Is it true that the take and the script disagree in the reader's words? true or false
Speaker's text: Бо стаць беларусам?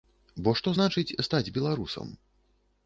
true